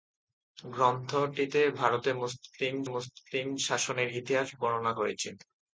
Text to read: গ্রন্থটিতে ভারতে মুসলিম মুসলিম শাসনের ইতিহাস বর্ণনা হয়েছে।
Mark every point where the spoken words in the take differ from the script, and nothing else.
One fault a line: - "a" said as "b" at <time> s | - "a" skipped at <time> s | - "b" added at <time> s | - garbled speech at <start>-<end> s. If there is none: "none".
none